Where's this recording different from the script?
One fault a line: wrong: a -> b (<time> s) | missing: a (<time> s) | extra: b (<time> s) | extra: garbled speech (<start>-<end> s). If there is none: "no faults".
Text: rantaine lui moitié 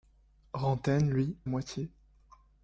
no faults